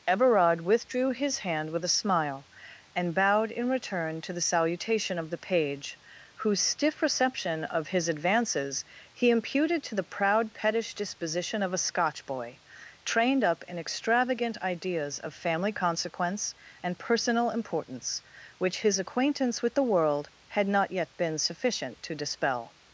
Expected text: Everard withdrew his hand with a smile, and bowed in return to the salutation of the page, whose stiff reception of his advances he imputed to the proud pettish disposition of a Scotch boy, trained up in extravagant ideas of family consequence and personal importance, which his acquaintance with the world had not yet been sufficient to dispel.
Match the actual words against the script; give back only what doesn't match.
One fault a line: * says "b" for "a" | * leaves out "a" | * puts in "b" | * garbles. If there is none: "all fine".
all fine